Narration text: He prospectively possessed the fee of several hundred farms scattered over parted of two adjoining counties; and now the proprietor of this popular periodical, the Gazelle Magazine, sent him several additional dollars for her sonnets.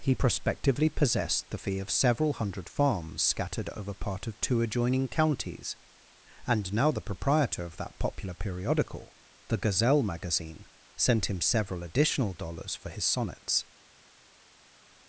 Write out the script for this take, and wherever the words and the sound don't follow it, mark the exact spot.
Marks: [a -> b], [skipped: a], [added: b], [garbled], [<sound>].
He prospectively possessed the fee of several hundred farms scattered over [parted -> part] of two adjoining counties; and now the proprietor of [this -> that] popular periodical, the Gazelle Magazine, sent him several additional dollars for [her -> his] sonnets.